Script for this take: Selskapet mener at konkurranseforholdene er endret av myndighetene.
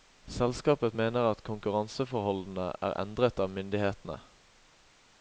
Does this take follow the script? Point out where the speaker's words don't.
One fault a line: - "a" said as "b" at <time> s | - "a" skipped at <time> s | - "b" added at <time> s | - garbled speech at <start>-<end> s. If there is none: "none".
none